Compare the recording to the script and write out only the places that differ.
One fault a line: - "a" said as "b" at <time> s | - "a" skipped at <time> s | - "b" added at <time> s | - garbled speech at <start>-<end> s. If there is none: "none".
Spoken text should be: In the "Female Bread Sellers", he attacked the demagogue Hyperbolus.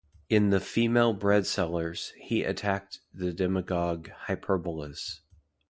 none